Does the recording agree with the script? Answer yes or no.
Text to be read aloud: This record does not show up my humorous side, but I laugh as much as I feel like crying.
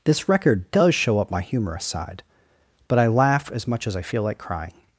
no